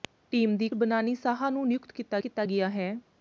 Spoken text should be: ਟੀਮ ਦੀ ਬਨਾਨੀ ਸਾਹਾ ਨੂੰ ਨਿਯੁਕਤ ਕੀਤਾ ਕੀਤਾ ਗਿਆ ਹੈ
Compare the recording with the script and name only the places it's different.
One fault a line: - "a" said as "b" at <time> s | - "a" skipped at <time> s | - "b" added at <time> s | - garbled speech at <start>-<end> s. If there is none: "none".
none